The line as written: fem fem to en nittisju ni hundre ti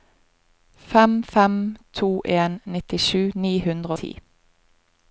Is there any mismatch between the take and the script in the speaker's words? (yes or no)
no